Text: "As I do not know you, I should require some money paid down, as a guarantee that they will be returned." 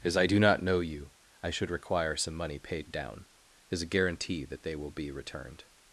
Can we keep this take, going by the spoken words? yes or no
yes